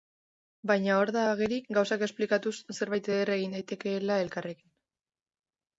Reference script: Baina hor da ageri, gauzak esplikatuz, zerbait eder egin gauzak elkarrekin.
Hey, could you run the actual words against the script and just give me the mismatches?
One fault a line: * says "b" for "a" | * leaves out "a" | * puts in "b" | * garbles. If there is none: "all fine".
* says "daitekeela" for "gauzak"